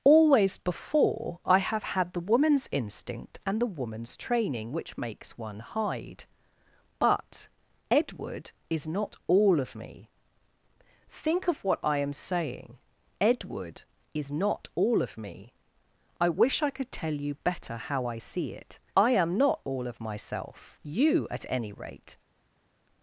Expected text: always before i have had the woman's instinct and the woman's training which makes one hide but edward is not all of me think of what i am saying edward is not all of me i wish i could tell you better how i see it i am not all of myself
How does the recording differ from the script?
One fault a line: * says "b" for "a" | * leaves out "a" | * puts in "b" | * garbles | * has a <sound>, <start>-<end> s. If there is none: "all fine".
* puts in "you at any rate"